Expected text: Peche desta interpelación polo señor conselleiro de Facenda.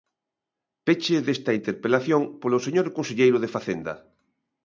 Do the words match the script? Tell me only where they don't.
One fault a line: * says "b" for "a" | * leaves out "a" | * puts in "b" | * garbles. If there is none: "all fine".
all fine